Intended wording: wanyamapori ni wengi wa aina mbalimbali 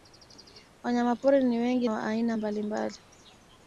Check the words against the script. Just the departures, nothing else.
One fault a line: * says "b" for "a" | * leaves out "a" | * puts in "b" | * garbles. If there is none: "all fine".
all fine